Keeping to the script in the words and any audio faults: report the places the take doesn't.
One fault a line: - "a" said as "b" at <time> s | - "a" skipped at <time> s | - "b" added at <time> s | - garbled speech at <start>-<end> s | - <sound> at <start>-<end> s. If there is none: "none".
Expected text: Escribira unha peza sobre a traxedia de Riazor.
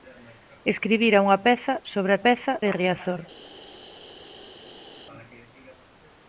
- "traxedia" said as "peza" at 2.2 s